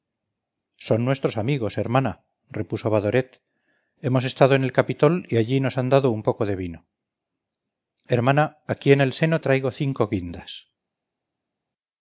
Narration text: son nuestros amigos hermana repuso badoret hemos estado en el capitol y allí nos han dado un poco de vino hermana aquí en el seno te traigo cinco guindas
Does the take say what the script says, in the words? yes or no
no